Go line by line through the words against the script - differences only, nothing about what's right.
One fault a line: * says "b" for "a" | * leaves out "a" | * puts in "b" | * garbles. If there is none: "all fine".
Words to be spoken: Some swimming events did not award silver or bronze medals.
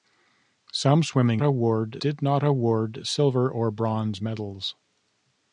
* says "award" for "events"